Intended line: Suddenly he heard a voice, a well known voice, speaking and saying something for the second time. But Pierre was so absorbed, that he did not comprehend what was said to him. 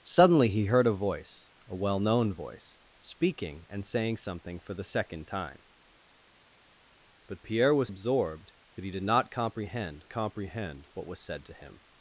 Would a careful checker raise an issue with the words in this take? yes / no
yes